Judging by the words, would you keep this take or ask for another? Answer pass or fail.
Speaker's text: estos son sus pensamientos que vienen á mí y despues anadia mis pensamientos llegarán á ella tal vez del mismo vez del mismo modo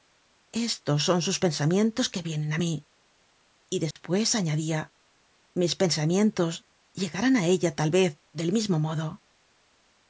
fail